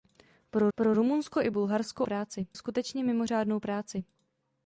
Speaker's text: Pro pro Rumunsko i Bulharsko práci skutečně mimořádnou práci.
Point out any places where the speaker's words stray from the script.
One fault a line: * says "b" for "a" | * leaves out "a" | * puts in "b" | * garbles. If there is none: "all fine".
all fine